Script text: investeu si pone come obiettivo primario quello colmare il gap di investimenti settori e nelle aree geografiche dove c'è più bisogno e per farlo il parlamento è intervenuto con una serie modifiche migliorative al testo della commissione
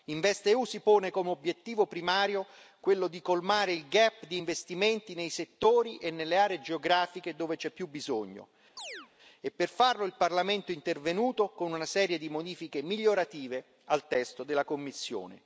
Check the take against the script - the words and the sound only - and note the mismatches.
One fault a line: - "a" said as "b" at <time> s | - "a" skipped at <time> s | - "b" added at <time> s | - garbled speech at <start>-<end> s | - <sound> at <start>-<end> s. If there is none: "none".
- "di" added at 3.1 s
- "nei" added at 5.1 s
- chirp at 8.8-9.1 s
- "di" added at 12.2 s